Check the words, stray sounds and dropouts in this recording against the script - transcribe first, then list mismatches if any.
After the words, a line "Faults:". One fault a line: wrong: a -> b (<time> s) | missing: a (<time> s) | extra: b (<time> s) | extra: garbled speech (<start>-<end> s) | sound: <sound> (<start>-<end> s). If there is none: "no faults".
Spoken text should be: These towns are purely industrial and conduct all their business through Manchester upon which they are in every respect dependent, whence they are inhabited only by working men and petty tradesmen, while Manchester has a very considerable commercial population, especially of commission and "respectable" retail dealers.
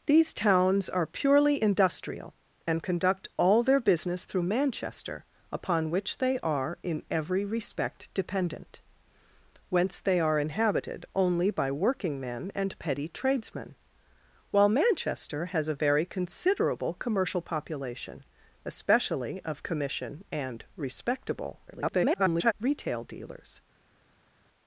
These towns are purely industrial and conduct all their business through Manchester upon which they are in every respect dependent, whence they are inhabited only by working men and petty tradesmen, while Manchester has a very considerable commercial population, especially of commission and "respectable" [garbled] retail dealers.
Faults:
extra: garbled speech (21.7-22.5 s)